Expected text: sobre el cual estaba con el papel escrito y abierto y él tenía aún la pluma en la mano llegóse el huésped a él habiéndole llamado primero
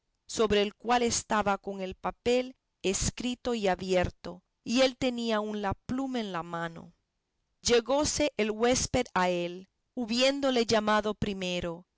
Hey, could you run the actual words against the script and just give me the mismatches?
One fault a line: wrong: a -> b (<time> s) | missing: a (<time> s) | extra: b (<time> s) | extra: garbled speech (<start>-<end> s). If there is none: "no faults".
no faults